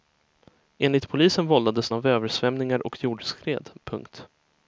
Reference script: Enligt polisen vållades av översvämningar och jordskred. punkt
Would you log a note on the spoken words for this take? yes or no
no